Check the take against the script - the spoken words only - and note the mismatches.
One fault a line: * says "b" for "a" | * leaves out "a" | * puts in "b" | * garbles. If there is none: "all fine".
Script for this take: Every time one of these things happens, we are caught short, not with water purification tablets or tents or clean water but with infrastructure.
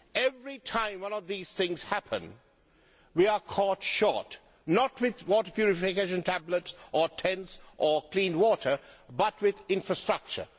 all fine